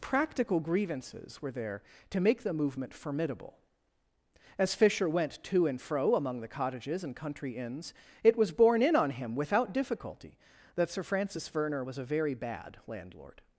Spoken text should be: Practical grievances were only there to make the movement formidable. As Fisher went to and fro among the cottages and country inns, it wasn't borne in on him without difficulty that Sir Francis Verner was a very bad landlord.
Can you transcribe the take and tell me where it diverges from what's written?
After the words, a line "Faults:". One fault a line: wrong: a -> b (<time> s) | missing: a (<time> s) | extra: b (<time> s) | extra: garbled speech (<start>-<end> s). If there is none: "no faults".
Practical grievances were there to make the movement formidable. As Fisher went to and fro among the cottages and country inns, it was borne in on him without difficulty that Sir Francis Verner was a very bad landlord.
Faults:
missing: only (1.5 s)
wrong: wasn't -> was (8.3 s)